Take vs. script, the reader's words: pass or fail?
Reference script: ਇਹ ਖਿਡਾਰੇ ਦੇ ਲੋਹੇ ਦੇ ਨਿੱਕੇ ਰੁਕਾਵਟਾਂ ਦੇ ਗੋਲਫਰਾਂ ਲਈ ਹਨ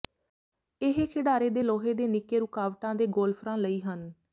pass